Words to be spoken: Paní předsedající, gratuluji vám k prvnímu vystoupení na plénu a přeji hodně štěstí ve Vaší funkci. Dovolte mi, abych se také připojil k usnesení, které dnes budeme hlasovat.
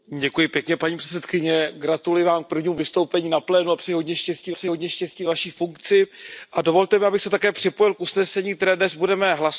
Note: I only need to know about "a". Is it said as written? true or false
true